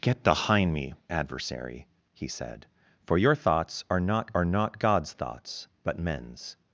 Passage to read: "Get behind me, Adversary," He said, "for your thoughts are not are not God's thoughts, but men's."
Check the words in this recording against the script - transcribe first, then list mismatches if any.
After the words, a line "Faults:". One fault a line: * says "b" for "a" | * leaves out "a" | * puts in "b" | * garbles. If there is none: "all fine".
"Get behind me, Adversary," He said, "for your thoughts are not are not God's thoughts, but men's."
Faults:
all fine